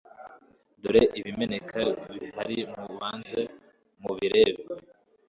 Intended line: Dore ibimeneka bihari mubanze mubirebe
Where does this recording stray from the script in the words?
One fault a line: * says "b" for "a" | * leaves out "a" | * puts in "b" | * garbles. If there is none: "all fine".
all fine